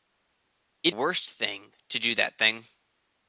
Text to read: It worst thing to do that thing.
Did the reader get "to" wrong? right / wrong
right